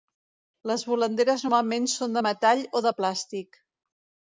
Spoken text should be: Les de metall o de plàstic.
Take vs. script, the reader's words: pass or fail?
fail